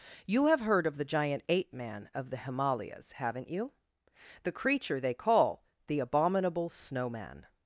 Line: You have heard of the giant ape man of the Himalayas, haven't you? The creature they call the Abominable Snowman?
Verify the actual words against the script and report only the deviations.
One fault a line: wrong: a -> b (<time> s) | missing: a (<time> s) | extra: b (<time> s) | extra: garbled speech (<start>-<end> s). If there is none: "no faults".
no faults